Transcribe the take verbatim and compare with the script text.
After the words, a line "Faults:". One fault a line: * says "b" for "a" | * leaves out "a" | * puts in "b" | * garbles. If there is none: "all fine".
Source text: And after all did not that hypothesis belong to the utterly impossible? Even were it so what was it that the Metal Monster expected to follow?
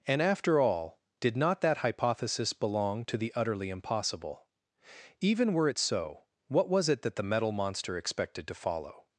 And after all did not that hypothesis belong to the utterly impossible? Even were it so what was it that the Metal Monster expected to follow?
Faults:
all fine